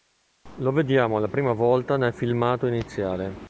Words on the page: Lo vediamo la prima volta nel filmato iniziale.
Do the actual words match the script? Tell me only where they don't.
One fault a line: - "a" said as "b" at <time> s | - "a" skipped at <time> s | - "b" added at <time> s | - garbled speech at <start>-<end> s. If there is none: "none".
none